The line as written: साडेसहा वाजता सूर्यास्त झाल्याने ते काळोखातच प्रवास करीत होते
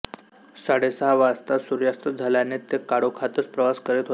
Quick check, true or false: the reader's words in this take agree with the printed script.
true